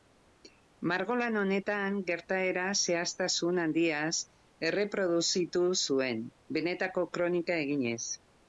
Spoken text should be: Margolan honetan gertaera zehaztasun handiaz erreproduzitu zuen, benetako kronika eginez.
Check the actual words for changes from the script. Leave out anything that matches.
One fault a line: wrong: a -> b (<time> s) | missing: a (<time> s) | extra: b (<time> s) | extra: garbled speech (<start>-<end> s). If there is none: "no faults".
no faults